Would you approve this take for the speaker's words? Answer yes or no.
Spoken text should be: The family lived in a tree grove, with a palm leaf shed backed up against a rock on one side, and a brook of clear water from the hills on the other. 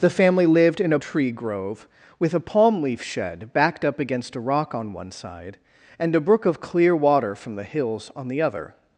yes